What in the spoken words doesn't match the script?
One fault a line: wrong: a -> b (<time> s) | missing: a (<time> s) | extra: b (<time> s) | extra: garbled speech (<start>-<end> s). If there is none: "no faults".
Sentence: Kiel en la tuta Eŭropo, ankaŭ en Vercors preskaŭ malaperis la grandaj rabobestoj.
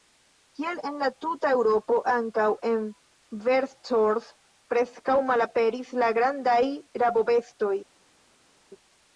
no faults